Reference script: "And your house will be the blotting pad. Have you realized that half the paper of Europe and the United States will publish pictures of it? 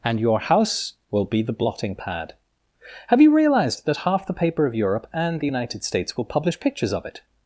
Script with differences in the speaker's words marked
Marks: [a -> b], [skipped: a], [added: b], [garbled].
"And your house will be the blotting pad. Have you realized that half the paper of Europe and the United States will publish pictures of it?